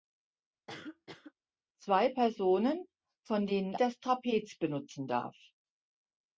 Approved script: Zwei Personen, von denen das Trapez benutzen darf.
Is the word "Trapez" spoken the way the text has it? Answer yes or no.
yes